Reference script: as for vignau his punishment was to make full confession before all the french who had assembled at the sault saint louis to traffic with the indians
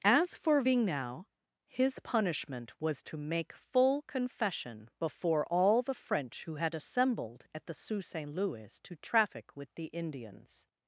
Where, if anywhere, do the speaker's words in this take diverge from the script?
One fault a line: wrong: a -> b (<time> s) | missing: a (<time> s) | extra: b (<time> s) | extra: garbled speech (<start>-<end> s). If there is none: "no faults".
no faults